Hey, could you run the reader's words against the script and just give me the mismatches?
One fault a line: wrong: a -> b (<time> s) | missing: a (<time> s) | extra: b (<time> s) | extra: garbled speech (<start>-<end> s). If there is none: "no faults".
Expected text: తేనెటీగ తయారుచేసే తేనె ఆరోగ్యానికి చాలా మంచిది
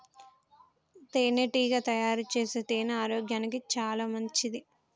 no faults